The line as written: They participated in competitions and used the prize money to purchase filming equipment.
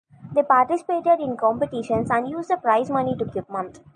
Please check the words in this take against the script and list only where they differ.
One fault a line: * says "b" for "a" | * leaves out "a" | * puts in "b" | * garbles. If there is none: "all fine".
* leaves out "purchase filming"